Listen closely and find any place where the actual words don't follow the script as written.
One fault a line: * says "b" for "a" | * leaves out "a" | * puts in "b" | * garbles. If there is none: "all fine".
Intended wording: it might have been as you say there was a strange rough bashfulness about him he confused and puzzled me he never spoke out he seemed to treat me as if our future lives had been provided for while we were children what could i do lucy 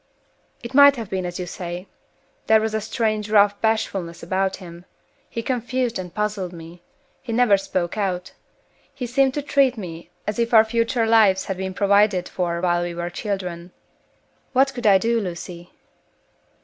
all fine